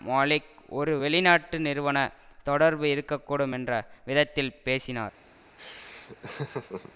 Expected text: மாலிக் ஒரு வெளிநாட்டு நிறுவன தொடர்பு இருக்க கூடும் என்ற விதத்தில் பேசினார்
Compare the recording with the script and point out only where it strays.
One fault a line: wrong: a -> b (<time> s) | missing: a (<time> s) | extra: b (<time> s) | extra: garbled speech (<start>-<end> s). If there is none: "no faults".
no faults